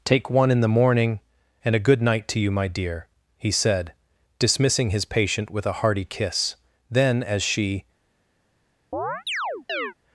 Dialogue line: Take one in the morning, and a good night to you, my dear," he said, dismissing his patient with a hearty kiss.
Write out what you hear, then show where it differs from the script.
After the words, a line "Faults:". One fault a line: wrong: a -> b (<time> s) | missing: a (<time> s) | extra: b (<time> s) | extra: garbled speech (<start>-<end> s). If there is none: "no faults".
Take one in the morning, and a good night to you, my dear," he said, dismissing his patient with a hearty kiss. Then, as she
Faults:
extra: Then as she (6.9 s)